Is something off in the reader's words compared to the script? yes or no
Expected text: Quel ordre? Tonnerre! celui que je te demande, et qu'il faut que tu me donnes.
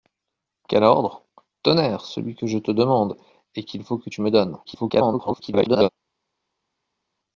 yes